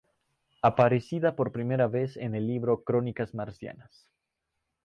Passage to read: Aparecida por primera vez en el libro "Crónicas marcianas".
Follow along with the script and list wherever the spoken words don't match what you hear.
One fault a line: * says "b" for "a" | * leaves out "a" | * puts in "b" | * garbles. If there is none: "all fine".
all fine